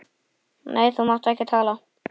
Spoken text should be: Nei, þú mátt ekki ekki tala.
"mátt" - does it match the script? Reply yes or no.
yes